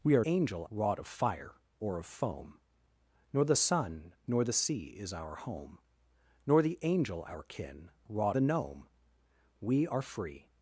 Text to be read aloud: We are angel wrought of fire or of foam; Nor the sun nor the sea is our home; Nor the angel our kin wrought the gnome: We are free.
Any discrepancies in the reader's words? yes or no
no